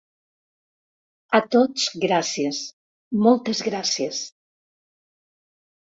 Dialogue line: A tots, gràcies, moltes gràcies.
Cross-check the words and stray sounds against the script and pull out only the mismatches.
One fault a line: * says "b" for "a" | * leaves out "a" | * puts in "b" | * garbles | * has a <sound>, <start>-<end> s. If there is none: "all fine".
all fine